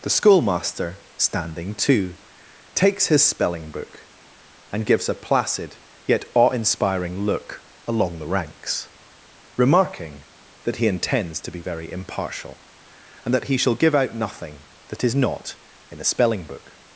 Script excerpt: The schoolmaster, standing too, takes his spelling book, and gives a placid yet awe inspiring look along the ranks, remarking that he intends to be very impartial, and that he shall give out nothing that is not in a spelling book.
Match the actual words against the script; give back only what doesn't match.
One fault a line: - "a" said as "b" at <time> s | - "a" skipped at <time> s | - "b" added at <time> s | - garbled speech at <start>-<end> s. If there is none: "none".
none